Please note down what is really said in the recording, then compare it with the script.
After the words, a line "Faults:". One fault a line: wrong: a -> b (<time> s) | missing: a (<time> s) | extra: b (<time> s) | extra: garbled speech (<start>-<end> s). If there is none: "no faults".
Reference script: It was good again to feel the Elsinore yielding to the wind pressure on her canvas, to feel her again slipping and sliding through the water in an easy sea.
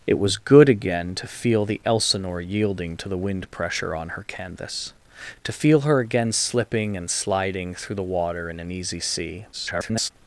It was good again to feel the Elsinore yielding to the wind pressure on her canvas, to feel her again slipping and sliding through the water in an easy sea. [garbled]
Faults:
extra: garbled speech (9.5-10.1 s)